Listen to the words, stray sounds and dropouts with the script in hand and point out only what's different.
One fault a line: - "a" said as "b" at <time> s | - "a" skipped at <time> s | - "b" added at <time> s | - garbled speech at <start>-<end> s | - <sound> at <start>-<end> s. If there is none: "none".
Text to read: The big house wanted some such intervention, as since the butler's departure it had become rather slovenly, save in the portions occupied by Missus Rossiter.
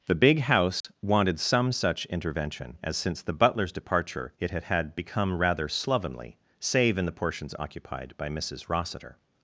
- dropout at 0.8-0.8 s
- "had" added at 4.6 s